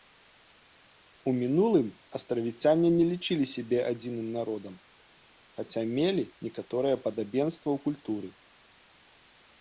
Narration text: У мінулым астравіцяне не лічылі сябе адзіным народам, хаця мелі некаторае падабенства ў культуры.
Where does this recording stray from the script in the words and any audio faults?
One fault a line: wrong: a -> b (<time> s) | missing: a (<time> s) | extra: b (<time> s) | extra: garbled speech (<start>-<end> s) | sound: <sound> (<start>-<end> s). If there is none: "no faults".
no faults